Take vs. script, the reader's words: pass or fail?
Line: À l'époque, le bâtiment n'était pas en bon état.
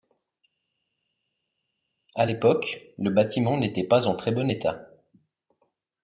fail